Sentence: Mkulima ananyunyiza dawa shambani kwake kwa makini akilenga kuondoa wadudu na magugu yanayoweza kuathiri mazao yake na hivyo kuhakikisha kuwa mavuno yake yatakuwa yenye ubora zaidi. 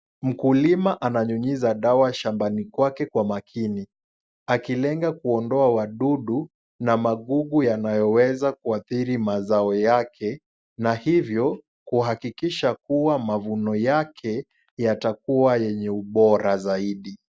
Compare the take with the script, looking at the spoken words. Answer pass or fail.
pass